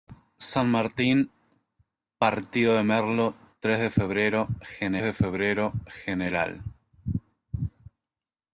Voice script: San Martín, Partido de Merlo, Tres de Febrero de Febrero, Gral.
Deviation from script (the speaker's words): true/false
false